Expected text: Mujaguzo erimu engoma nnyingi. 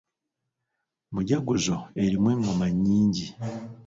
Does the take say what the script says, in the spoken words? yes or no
yes